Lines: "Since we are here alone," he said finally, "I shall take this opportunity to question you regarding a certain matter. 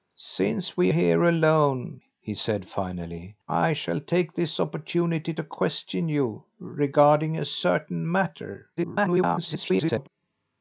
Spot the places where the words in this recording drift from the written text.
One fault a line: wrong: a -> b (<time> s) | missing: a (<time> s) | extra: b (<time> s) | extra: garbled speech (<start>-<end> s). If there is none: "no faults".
missing: are (0.9 s)
extra: garbled speech (8.8-10.1 s)